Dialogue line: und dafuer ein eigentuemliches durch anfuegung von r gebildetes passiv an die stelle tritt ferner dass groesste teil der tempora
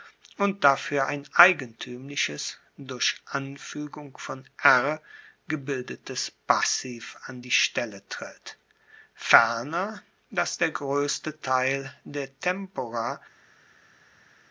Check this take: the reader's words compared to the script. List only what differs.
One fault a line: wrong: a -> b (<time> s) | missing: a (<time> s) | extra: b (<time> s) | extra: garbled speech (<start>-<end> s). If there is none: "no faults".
extra: der (10.6 s)